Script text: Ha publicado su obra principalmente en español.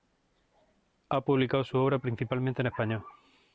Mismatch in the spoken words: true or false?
false